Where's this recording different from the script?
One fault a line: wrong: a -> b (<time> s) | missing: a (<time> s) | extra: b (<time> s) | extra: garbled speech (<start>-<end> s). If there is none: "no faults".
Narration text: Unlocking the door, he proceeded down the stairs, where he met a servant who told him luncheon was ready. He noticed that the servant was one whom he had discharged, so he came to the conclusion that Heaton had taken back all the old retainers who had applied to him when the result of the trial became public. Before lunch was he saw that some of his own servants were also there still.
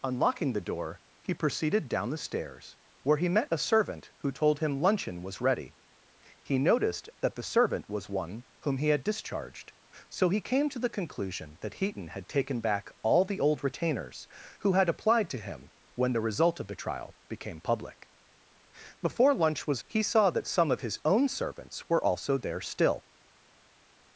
no faults